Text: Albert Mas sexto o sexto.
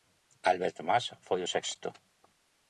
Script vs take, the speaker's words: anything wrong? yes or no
yes